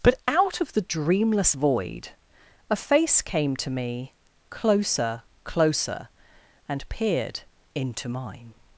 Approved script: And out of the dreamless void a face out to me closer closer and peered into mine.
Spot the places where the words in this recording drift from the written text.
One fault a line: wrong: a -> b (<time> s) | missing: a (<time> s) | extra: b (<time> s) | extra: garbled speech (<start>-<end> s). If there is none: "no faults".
wrong: And -> But (0.0 s)
wrong: out -> came (3.2 s)